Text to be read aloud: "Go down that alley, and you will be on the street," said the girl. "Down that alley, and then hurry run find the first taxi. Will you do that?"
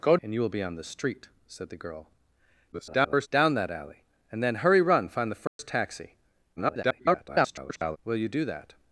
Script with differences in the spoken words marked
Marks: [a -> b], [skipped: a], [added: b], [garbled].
"Go [skipped: down that alley,] and you will be on the street," said the girl. [garbled] "Down that alley, and then hurry run find the first taxi. [garbled] Will you do that?"